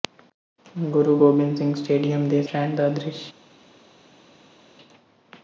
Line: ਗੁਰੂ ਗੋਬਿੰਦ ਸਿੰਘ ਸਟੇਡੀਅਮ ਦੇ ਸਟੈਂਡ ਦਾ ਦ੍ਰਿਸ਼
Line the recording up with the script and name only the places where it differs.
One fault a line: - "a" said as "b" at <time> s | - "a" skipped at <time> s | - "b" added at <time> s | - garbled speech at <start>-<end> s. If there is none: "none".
none